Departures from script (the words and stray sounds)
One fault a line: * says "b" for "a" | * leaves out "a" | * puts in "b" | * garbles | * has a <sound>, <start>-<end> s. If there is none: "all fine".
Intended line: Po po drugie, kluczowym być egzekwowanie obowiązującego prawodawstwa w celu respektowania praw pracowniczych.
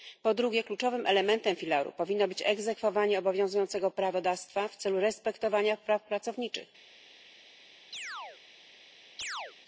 * leaves out "po"
* puts in "elementem filaru powinno"
* has a chirp, 7.9-8.4 s
* has a chirp, 9.2-9.5 s